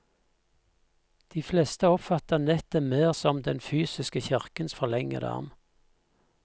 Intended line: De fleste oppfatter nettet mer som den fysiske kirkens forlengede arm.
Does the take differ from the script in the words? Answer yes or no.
no